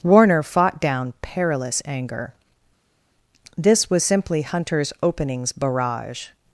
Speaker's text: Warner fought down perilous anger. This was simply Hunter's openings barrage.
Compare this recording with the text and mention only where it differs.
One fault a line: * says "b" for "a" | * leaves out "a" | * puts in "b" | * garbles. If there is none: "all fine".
all fine